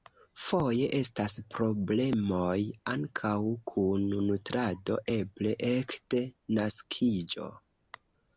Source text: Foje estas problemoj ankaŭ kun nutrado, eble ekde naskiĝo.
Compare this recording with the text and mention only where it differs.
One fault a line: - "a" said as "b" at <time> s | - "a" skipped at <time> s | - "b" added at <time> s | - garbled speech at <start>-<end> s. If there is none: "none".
none